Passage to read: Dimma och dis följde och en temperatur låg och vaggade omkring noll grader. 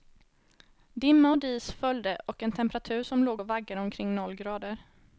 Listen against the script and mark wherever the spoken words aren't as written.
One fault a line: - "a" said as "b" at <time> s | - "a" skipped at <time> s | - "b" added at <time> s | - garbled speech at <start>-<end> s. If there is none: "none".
- "som" added at 3.0 s